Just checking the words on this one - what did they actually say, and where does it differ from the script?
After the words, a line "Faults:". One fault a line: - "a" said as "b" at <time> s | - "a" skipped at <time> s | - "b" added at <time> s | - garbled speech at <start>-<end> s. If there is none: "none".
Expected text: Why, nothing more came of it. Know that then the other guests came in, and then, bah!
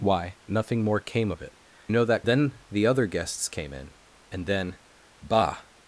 Why, nothing more came of it. Know that then the other guests came in, and then, bah!
Faults:
none